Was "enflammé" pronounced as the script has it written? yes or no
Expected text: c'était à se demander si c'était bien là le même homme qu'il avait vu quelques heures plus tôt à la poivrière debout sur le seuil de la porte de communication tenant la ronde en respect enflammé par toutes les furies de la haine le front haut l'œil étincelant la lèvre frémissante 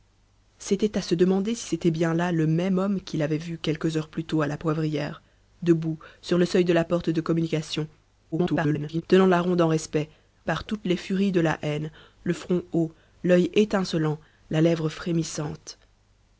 no